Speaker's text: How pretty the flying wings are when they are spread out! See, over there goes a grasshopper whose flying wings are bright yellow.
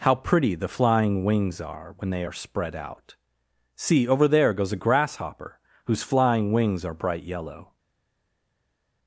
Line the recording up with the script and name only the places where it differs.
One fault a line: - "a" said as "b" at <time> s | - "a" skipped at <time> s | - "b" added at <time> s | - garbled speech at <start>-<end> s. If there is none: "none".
none